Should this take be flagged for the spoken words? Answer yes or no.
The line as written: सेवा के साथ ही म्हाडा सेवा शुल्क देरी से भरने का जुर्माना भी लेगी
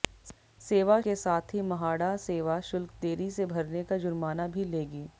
no